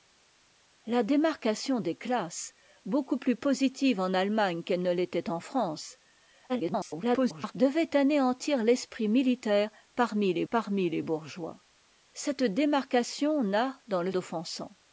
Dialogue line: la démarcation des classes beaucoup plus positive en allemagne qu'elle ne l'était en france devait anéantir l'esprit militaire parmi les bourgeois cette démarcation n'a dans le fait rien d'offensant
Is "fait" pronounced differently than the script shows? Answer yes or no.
yes